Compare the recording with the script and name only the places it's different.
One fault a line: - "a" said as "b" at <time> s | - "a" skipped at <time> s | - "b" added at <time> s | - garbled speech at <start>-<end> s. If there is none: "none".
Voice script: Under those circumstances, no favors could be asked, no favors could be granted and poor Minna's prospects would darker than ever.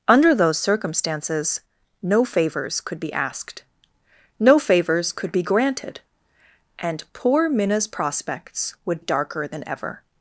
none